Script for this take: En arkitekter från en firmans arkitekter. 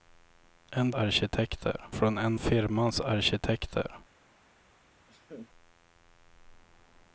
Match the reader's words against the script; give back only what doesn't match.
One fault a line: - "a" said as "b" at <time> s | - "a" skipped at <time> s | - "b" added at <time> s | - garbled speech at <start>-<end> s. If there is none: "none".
none